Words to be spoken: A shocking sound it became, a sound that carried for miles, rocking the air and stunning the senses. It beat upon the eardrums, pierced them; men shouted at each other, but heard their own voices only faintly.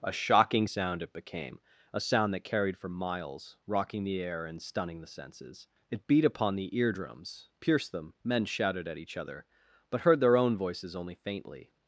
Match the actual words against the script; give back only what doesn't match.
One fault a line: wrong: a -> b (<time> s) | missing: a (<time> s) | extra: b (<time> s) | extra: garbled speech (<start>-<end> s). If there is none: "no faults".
no faults